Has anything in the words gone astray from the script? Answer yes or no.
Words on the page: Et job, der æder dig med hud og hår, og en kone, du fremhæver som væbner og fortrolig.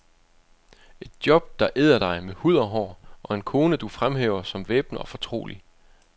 no